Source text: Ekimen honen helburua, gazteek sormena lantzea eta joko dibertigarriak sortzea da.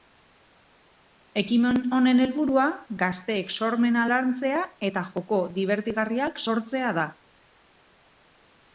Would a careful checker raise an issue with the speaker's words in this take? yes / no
no